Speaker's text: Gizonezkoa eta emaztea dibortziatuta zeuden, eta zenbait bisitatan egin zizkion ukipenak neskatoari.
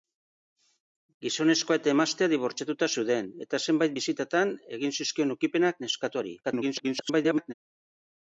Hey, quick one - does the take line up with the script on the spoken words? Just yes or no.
no